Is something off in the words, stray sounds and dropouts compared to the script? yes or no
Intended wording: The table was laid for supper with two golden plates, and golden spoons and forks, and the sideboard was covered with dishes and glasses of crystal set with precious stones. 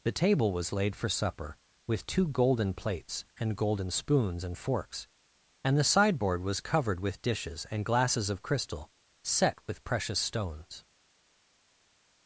no